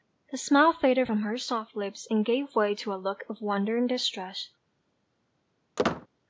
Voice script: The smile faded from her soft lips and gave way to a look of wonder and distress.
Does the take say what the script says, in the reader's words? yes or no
yes